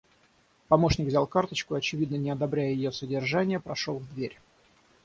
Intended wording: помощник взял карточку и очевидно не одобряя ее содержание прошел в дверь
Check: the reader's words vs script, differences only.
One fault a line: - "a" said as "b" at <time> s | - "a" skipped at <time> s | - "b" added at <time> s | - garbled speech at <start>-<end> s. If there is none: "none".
none